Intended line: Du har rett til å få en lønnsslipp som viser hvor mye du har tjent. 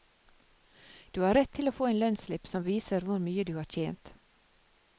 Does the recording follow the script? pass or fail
pass